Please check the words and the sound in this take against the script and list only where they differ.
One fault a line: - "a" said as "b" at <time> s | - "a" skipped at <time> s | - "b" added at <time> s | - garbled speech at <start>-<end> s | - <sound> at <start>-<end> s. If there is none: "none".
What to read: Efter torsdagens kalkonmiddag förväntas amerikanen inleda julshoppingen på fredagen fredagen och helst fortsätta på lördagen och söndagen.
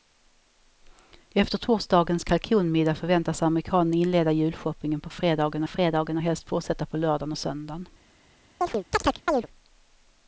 - chirp at 8.6-9.5 s